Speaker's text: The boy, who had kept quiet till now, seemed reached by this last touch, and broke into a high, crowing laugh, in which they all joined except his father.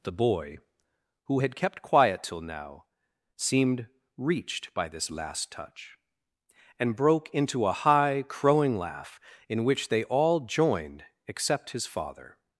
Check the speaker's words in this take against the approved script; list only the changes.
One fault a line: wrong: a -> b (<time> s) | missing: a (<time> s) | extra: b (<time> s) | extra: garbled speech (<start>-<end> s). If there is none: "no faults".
no faults